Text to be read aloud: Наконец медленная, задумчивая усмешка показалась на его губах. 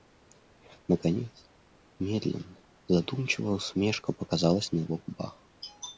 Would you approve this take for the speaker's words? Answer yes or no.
yes